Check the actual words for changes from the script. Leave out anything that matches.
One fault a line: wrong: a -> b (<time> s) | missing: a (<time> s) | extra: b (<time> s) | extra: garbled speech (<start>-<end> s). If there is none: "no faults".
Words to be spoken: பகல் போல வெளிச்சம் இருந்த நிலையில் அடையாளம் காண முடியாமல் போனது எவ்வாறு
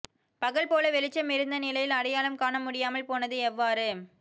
no faults